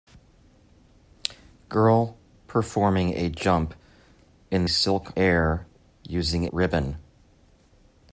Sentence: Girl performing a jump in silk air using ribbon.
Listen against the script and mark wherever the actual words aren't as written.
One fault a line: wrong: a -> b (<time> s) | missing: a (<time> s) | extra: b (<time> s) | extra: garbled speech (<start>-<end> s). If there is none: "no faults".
no faults